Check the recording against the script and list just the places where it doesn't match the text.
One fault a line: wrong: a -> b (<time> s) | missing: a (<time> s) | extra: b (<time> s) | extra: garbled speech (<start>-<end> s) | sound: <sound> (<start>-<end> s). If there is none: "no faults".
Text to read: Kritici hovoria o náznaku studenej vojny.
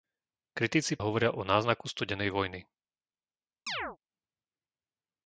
sound: chirp (3.7-4.0 s)